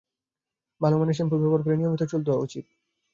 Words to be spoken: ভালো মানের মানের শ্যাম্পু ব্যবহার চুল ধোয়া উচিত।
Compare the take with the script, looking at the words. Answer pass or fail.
fail